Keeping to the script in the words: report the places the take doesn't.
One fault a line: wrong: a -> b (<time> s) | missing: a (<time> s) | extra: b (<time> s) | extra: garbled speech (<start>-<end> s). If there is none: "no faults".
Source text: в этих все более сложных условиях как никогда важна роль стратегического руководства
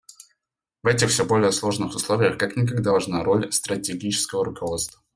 no faults